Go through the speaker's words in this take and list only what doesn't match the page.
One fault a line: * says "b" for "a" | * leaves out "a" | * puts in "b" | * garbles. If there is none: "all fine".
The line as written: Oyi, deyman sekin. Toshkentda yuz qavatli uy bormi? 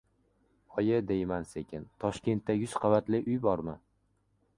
all fine